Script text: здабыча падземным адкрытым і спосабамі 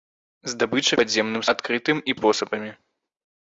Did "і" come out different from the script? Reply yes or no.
no